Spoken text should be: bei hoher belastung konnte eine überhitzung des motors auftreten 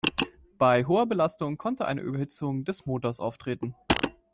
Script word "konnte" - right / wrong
right